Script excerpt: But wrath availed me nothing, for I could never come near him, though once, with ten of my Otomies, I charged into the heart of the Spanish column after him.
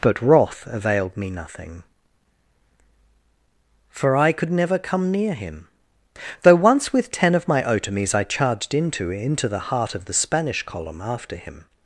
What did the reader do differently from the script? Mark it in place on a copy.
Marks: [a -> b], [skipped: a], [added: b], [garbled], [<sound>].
But wrath availed me nothing, for I could never come near him, though once, with ten of my Otomies, I charged into [added: into] the heart of the Spanish column after him.